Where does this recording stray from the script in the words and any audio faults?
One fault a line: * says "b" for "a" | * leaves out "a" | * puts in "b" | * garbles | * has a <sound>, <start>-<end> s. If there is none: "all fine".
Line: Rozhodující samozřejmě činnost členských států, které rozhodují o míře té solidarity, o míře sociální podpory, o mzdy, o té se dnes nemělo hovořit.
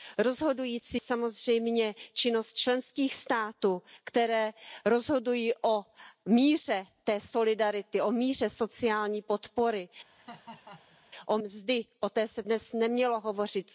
* has a laugh, 10.1-11.0 s